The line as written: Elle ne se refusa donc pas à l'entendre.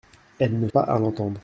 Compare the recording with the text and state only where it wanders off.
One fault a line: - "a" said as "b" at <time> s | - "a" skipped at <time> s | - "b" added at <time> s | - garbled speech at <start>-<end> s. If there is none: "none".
- "se refusa donc" skipped at 0.7 s